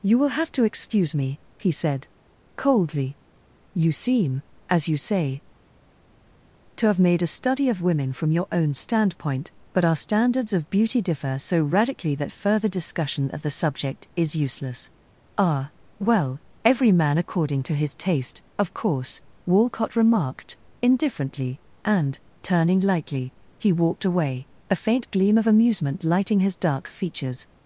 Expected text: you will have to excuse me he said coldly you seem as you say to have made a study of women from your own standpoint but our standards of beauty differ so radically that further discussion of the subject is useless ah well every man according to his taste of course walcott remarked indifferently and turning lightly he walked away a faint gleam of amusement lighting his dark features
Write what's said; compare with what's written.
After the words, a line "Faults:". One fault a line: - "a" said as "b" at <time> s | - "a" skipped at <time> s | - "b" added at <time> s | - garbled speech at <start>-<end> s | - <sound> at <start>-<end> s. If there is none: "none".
you will have to excuse me he said coldly you seem as you say to have made a study of women from your own standpoint but our standards of beauty differ so radically that further discussion of the subject is useless ah well every man according to his taste of course walcott remarked indifferently and turning lightly he walked away a faint gleam of amusement lighting his dark features
Faults:
none